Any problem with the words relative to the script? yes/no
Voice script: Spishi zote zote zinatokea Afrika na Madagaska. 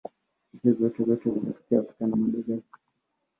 no